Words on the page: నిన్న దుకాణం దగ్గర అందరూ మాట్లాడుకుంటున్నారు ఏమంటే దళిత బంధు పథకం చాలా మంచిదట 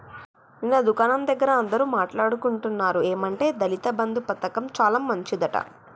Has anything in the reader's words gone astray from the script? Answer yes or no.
no